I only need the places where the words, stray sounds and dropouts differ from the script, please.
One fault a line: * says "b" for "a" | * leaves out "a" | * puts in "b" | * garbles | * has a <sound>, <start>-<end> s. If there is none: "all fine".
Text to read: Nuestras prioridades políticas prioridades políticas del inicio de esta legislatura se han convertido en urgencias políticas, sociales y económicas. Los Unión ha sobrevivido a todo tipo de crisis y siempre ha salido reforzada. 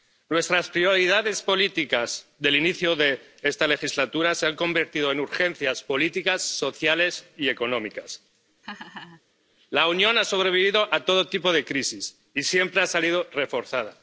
* leaves out "prioridades políticas"
* has a laugh, 8.6-9.2 s
* says "La" for "Los"